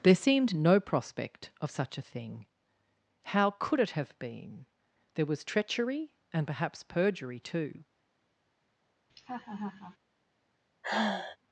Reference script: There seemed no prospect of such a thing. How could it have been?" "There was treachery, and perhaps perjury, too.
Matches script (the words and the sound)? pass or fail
fail